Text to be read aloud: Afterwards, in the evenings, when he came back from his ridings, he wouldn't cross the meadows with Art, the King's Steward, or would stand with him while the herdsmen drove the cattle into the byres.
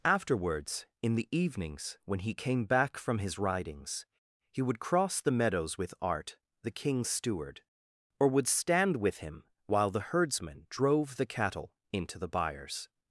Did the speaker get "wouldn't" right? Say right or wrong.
wrong